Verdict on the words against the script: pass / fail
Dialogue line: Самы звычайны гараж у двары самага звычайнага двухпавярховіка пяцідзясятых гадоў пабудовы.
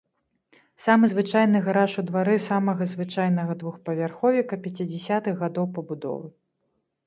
pass